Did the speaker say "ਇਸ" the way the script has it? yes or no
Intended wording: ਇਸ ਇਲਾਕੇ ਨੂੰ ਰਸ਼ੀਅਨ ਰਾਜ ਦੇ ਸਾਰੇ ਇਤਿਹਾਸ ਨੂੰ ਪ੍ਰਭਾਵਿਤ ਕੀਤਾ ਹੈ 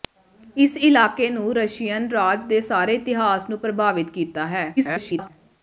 yes